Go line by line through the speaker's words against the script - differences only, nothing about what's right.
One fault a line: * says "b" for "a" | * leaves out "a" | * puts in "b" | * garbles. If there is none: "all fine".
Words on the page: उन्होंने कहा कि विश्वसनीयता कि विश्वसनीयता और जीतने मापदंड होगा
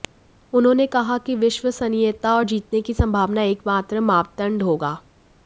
* says "और जीतने की संभावना एकमात्र" for "कि विश्वसनीयता और जीतने"